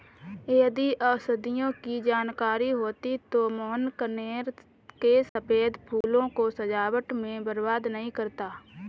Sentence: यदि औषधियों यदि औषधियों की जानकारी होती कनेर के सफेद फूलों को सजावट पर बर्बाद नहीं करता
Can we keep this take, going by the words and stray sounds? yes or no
no